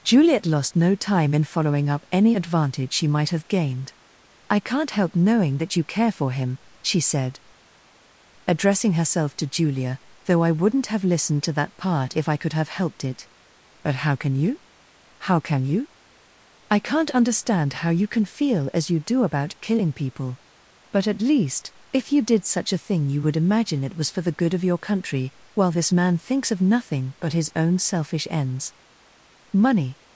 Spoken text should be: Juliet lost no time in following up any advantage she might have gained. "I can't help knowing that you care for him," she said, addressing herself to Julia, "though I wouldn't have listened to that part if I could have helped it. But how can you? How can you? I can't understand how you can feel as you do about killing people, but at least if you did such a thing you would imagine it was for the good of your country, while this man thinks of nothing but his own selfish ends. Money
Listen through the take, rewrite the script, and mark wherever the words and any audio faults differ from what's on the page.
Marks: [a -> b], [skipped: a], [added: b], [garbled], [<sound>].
Juliet lost no time in following up any advantage she might have gained. "I can't help knowing that you care for him," she said, addressing herself to Julia, "though I wouldn't have listened to that part if I could have helped it. But how can you? How can you? I can't understand how you can feel as you do about killing people, but at least if you did such a thing you would imagine it was for the good of your country, while this man thinks of nothing but his own selfish ends. Money